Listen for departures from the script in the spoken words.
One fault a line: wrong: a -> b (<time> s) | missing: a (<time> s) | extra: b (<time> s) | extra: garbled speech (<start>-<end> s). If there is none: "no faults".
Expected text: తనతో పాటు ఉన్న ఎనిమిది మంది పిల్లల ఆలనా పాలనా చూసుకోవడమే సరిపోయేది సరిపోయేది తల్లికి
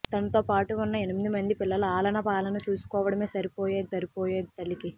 no faults